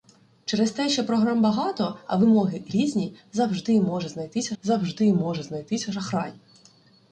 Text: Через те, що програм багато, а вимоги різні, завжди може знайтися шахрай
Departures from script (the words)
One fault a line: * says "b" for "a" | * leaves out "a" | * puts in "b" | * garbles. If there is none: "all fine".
* puts in "завжди може знайтися"